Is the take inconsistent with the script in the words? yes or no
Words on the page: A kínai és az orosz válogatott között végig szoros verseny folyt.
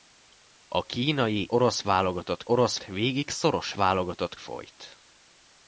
yes